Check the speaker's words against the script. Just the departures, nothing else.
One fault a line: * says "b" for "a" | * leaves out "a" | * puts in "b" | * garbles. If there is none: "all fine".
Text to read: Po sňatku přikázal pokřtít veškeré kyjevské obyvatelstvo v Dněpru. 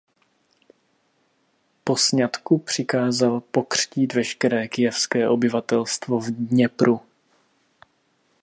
all fine